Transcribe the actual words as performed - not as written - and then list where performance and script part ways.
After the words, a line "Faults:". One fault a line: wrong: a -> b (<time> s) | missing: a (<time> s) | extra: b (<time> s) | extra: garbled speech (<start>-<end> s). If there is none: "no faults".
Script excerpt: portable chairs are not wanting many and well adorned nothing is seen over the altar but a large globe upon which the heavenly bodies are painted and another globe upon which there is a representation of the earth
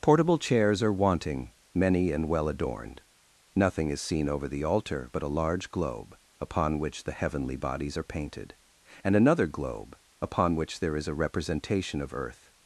portable chairs are wanting many and well adorned nothing is seen over the altar but a large globe upon which the heavenly bodies are painted and another globe upon which there is a representation of earth
Faults:
missing: not (0.9 s)
missing: the (12.1 s)